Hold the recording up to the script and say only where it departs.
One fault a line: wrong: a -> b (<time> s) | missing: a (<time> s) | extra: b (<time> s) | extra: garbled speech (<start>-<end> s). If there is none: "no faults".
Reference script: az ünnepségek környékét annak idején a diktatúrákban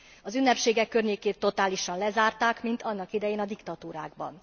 extra: totálisan lezárták mint (1.4 s)